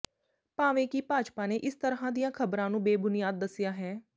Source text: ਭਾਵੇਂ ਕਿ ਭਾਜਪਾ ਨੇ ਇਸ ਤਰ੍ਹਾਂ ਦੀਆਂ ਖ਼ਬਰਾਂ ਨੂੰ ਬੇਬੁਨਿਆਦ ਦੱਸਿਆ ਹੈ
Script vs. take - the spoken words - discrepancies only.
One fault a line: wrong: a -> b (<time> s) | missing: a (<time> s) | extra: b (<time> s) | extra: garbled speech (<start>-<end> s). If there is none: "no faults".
no faults